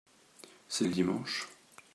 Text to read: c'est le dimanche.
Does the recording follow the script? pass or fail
pass